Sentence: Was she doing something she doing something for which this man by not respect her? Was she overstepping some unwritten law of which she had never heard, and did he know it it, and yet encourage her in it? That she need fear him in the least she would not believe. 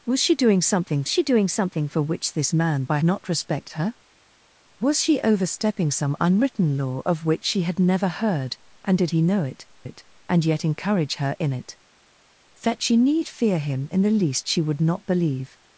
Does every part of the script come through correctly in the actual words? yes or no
yes